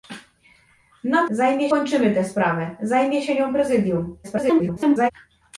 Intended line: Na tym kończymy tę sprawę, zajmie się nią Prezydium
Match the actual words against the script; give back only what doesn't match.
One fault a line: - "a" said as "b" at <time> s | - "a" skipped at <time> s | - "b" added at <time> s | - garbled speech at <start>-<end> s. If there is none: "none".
- "tym" said as "zajmie" at 1.3 s
- garbled speech at 4.2-5.1 s